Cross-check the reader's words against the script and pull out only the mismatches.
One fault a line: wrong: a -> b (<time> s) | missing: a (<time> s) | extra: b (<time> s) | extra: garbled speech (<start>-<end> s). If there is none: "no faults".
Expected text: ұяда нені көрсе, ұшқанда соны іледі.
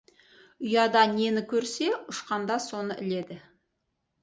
no faults